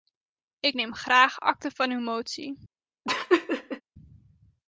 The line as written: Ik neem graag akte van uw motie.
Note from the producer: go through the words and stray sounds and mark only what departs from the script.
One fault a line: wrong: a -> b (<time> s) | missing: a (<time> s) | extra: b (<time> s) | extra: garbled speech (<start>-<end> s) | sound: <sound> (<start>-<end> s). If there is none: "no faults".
sound: laugh (3.0-3.8 s)